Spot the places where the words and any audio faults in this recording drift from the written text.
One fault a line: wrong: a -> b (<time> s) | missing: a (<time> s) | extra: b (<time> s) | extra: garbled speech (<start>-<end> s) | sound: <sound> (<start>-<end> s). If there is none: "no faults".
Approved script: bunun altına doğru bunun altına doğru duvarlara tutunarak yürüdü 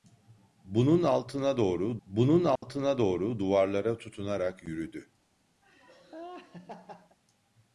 sound: dropout (2.6-2.6 s)
sound: laugh (5.6-7.2 s)